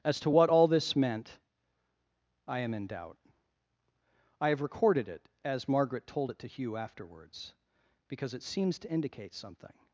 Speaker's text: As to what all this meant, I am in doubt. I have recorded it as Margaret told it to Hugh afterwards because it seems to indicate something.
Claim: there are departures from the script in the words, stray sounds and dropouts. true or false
false